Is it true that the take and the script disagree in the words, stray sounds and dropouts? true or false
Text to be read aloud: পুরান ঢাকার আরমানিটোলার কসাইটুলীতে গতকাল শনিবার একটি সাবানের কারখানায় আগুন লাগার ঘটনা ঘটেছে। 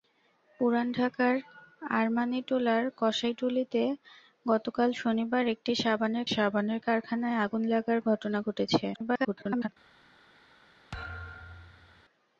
true